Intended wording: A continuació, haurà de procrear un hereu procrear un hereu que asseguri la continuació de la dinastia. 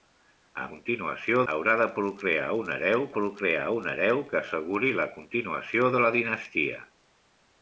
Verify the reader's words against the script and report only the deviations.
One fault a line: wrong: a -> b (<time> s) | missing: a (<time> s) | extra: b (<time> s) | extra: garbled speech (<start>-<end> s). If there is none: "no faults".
no faults